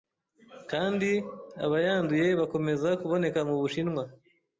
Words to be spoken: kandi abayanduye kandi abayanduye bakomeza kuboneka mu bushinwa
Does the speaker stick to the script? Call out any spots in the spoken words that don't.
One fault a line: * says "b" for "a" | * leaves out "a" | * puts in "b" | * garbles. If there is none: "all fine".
* leaves out "kandi abayanduye"